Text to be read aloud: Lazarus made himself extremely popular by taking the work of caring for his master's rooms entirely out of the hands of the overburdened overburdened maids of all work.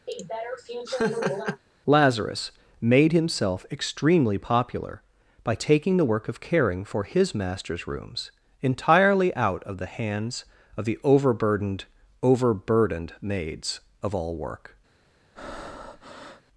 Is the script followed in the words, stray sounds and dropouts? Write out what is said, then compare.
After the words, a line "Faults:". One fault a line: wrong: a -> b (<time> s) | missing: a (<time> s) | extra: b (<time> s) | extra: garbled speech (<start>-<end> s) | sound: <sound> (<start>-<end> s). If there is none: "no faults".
Lazarus made himself extremely popular by taking the work of caring for his master's rooms entirely out of the hands of the overburdened overburdened maids of all work.
Faults:
sound: laugh (0.1-1.6 s)
sound: breath (15.3-16.4 s)